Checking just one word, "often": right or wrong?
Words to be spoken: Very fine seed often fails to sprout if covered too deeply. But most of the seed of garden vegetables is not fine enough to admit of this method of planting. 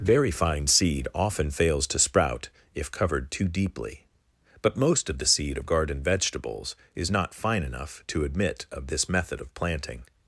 right